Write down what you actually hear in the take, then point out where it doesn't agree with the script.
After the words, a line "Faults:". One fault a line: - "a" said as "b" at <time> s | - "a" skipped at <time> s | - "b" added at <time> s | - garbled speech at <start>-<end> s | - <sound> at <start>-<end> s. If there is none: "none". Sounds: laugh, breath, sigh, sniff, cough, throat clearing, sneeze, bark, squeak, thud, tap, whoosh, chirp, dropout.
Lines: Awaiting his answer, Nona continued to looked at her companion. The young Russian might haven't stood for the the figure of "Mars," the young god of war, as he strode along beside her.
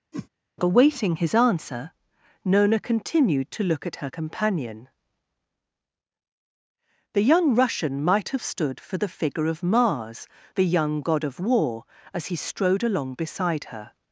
Awaiting his answer, Nona continued to look at her companion. The young Russian might have stood for the figure of "Mars," the young god of war, as he strode along beside her.
Faults:
- whoosh at 0.1-0.3 s
- "looked" said as "look" at 3.6 s
- "haven't" said as "have" at 8.3 s
- "the" skipped at 9.1 s